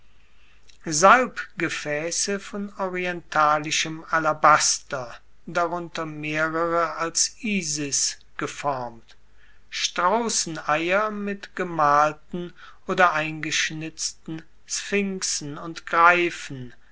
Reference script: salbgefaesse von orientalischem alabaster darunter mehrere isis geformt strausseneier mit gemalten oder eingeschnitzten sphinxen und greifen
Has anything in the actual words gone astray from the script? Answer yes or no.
yes